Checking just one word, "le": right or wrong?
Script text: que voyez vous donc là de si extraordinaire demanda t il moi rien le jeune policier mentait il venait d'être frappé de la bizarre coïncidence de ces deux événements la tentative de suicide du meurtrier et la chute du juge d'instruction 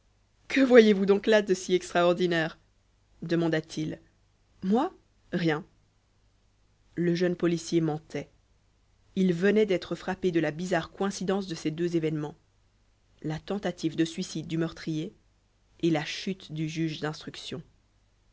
right